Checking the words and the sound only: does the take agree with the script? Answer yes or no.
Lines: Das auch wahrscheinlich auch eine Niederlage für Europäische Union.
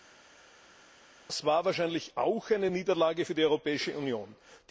no